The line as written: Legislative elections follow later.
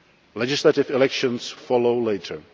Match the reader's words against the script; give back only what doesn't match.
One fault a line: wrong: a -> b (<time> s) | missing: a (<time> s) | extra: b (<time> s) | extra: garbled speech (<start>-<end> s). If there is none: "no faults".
no faults